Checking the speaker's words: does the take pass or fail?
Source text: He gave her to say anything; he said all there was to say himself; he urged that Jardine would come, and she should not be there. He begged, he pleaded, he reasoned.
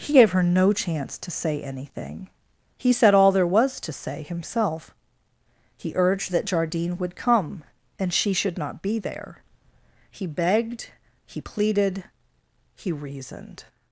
fail